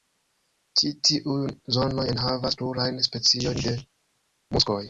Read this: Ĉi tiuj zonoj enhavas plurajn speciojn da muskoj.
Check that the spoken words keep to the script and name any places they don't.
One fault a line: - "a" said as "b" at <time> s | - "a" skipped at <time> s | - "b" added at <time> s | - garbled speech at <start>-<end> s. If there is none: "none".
- "da" said as "de" at 3.7 s